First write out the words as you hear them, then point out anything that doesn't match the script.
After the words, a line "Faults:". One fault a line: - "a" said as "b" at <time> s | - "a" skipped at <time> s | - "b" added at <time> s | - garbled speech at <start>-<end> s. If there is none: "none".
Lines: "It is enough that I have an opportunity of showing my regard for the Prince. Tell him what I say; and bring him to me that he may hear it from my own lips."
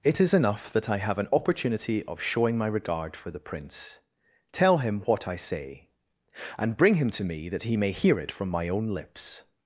"It is enough that I have an opportunity of showing my regard for the Prince. Tell him what I say; and bring him to me that he may hear it from my own lips."
Faults:
none